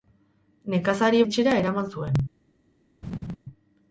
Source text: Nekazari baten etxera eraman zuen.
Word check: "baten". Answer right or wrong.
wrong